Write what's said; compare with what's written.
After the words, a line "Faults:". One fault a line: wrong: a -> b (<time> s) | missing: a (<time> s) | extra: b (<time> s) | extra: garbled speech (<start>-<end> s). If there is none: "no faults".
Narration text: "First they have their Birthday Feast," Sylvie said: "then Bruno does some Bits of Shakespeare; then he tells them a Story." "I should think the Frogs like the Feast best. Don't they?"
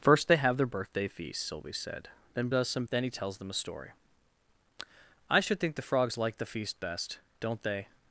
"First they have their Birthday Feast," Sylvie said: "then Does some; Then he tells them a Story." "I should think the Frogs like the Feast best. Don't they?"
Faults:
missing: Bruno (2.5 s)
missing: Bits of Shakespeare (2.8 s)